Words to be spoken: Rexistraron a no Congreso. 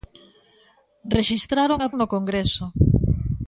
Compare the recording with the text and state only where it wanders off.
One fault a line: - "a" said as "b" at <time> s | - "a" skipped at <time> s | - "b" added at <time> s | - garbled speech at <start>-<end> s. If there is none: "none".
none